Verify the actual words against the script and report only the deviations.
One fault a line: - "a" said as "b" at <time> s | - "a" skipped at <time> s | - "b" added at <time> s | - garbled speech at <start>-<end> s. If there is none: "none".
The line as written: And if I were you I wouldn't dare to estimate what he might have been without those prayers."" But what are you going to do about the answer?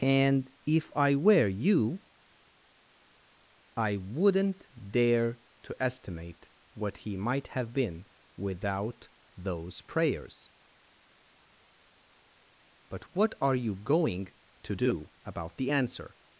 none